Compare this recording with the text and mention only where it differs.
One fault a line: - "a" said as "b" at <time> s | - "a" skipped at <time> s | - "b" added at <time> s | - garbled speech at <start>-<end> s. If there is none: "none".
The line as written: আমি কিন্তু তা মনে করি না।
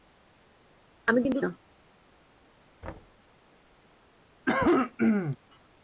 - "তা মনে করি" skipped at 1.4 s